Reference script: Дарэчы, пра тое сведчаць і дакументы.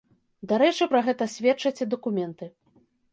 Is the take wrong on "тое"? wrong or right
wrong